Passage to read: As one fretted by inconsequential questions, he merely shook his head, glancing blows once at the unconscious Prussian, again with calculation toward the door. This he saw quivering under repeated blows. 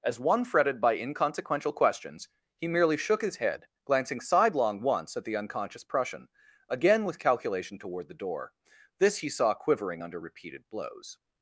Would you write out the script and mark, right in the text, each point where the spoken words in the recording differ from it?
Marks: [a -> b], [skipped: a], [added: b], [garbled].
As one fretted by inconsequential questions, he merely shook his head, glancing [blows -> sidelong] once at the unconscious Prussian, again with calculation toward the door. This he saw quivering under repeated blows.